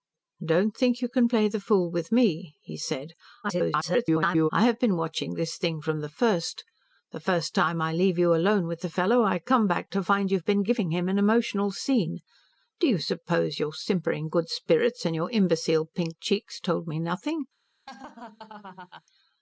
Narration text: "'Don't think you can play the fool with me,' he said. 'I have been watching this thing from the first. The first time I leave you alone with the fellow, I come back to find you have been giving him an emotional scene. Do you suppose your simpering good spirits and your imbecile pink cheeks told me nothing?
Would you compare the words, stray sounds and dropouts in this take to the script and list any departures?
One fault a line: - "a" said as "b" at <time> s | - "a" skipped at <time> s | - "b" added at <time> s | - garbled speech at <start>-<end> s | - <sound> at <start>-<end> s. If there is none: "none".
- garbled speech at 3.4-4.5 s
- laugh at 17.9-19.0 s